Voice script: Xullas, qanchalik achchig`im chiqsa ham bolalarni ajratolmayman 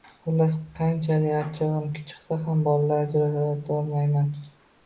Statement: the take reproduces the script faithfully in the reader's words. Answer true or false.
true